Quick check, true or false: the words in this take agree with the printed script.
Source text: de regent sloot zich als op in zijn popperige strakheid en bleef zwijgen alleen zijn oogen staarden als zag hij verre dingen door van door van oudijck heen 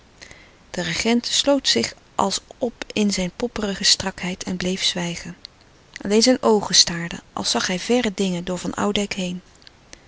false